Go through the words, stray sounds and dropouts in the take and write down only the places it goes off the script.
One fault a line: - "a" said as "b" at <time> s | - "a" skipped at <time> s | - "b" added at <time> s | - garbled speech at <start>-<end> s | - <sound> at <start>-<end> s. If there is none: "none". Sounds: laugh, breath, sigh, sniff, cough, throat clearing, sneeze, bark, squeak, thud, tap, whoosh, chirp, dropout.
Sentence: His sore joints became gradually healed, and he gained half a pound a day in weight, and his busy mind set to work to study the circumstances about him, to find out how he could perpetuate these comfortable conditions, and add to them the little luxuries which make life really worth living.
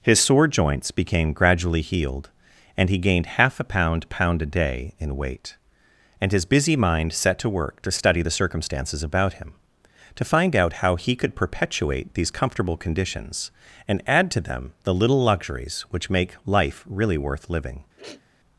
- "pound" added at 4.1 s
- sniff at 18.0-18.2 s